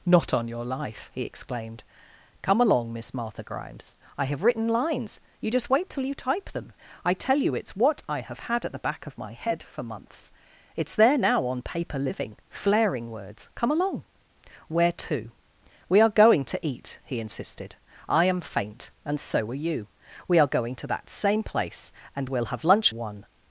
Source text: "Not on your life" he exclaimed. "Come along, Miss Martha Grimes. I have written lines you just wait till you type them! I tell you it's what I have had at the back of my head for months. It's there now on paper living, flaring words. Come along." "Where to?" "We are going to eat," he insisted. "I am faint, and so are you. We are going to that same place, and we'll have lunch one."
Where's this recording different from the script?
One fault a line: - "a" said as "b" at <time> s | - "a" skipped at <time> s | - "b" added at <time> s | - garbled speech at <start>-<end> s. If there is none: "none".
none